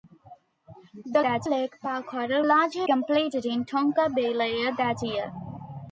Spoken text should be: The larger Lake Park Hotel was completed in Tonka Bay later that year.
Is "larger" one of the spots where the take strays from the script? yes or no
yes